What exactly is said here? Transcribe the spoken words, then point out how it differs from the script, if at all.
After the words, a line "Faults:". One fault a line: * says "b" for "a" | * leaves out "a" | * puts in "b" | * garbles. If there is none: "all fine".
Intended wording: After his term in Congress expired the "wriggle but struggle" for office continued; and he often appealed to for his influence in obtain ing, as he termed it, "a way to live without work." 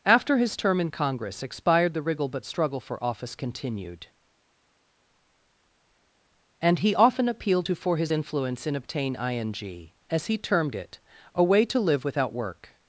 After his term in Congress expired the "wriggle but struggle" for office continued; and he often appealed to for his influence in obtain ing, as he termed it, "a way to live without work."
Faults:
all fine